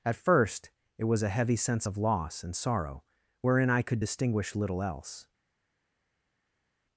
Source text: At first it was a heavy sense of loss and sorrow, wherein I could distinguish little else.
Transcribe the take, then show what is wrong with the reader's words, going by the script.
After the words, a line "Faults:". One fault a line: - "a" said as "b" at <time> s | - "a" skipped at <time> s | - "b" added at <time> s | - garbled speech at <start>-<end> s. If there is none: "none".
At first it was a heavy sense of loss and sorrow, wherein I could distinguish little else.
Faults:
none